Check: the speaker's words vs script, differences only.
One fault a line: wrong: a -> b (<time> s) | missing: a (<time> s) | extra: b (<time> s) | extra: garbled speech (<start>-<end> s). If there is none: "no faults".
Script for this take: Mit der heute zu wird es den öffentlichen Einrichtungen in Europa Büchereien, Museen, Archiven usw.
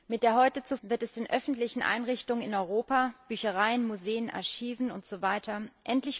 no faults